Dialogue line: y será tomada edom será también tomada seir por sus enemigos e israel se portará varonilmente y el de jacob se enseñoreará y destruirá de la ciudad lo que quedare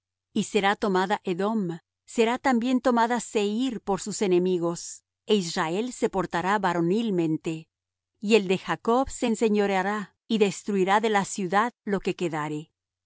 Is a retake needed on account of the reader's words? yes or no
no